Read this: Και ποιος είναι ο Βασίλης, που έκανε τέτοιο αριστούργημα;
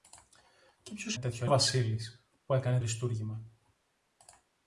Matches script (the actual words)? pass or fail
fail